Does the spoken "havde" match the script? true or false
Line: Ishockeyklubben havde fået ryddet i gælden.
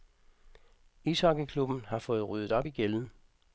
false